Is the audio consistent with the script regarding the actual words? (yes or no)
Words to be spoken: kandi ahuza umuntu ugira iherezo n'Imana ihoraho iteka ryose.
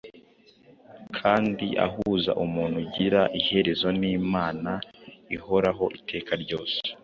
yes